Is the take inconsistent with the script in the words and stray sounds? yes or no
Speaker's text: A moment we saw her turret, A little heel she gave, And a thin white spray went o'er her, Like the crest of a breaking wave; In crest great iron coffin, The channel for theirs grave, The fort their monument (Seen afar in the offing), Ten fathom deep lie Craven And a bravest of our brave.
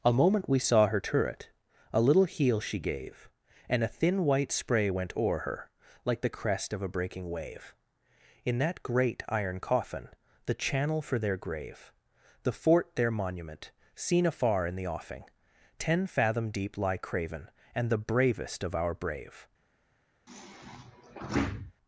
yes